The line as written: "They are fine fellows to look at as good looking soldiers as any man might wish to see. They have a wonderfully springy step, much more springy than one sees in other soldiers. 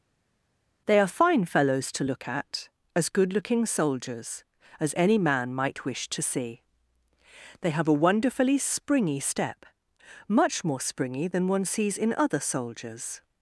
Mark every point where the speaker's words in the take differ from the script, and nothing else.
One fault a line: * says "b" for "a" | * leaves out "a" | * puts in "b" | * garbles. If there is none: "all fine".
all fine